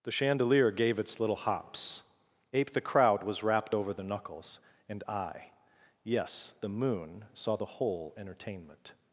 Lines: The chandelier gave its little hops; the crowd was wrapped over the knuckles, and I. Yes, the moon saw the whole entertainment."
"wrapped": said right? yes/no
yes